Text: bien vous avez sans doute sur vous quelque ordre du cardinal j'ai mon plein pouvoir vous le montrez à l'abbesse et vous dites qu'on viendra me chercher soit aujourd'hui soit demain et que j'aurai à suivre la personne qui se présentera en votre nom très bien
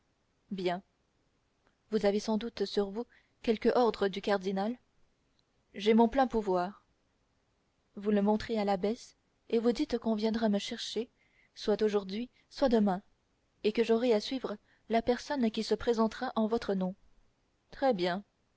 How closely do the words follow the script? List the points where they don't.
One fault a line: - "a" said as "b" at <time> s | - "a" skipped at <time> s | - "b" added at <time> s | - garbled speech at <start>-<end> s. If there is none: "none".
none